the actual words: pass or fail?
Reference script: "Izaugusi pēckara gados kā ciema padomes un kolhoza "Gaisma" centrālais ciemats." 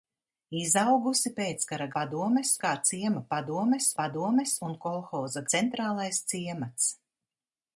fail